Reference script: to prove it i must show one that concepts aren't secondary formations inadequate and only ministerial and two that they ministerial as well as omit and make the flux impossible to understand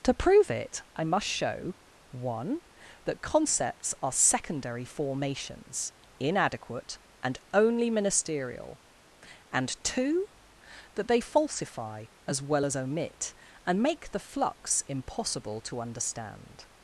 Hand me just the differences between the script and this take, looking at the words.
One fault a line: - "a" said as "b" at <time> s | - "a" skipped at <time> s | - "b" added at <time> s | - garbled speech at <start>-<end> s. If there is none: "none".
- "aren't" said as "are" at 4.0 s
- "ministerial" said as "falsify" at 11.2 s